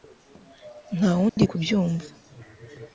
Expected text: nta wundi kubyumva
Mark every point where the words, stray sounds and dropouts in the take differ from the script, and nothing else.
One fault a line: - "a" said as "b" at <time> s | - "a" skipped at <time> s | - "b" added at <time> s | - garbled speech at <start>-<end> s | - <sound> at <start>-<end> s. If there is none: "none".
- dropout at 1.3-1.4 s